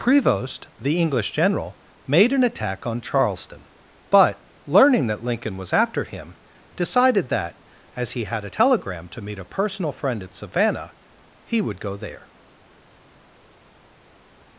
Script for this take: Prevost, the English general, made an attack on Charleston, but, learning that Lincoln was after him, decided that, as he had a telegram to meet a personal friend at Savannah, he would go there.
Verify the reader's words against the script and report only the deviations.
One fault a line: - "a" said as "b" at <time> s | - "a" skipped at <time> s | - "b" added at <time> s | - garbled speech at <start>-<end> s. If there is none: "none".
none